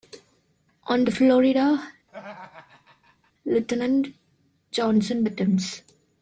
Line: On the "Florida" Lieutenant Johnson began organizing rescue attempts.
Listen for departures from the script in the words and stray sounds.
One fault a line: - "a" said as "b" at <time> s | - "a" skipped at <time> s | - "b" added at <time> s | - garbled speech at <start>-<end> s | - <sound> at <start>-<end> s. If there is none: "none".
- laugh at 2.1-3.3 s
- "began organizing rescue" skipped at 5.2 s